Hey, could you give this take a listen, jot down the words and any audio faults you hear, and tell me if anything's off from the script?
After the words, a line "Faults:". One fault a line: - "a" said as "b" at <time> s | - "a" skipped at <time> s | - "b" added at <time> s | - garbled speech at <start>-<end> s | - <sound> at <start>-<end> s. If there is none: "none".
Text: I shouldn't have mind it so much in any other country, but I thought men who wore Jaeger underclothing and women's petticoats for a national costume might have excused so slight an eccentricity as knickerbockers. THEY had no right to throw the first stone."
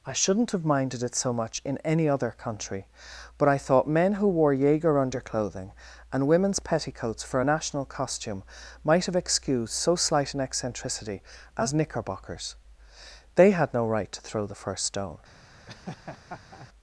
I shouldn't have minded it so much in any other country, but I thought men who wore Jaeger underclothing and women's petticoats for a national costume might have excused so slight an eccentricity as knickerbockers. THEY had no right to throw the first stone."
Faults:
- "mind" said as "minded" at 0.7 s
- laugh at 15.7-16.7 s